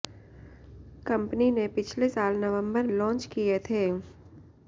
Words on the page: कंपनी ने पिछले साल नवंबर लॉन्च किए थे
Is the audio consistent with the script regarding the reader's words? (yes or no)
yes